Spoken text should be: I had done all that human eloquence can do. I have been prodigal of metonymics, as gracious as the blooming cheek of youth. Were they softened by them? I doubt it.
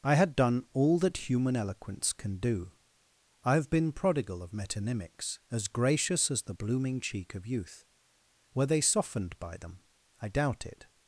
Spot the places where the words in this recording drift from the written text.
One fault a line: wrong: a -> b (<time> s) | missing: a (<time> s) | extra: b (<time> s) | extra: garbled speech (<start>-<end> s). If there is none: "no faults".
no faults